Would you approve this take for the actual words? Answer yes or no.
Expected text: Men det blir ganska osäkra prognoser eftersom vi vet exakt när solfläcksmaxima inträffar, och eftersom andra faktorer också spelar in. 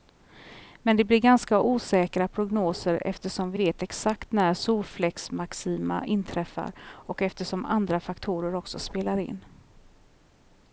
yes